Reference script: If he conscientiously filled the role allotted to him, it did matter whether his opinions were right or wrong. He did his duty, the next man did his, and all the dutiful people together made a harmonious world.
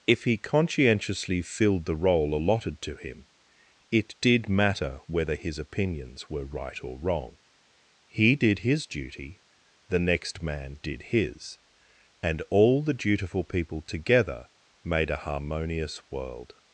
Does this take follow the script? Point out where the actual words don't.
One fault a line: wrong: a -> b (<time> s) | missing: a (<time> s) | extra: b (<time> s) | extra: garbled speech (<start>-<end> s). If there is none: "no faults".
no faults